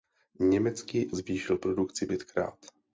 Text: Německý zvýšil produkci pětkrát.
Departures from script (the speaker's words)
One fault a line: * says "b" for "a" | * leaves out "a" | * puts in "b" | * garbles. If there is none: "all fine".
all fine